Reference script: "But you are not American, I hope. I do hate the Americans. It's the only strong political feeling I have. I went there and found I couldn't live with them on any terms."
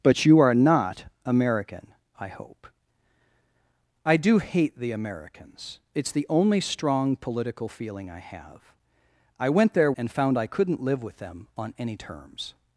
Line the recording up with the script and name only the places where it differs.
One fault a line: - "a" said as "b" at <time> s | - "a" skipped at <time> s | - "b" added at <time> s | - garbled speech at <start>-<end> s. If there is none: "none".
none